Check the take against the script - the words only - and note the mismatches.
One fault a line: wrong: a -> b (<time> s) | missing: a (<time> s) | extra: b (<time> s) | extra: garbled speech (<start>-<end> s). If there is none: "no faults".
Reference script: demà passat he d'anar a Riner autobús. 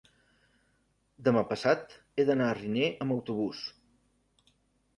extra: amb (3.1 s)